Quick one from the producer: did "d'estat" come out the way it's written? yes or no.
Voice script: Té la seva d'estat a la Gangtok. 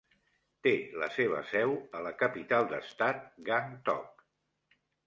no